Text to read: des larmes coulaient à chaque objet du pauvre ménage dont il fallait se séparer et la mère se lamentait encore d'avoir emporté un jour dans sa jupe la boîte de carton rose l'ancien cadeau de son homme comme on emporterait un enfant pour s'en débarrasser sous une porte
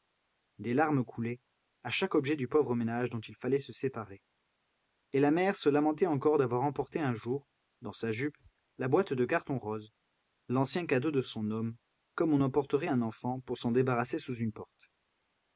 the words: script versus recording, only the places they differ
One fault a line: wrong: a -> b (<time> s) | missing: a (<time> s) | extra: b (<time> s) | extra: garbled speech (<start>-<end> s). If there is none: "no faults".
no faults